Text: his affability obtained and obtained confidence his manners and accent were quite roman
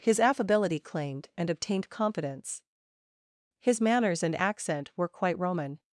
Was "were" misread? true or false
false